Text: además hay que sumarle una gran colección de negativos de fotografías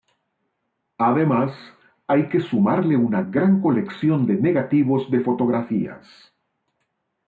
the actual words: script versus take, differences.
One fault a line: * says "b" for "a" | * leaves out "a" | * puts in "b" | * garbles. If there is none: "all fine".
all fine